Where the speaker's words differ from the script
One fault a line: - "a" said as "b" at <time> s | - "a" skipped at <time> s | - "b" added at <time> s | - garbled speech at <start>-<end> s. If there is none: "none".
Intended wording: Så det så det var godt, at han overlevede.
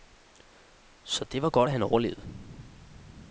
- "så det" skipped at 1.4 s